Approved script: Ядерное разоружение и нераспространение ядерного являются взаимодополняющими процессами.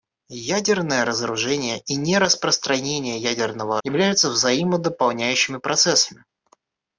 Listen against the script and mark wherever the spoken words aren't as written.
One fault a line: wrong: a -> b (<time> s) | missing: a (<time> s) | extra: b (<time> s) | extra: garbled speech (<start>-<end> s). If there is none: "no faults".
no faults